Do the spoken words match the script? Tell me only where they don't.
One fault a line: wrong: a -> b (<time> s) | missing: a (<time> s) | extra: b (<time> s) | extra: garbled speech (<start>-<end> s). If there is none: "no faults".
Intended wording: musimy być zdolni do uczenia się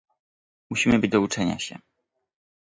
missing: zdolni (1.1 s)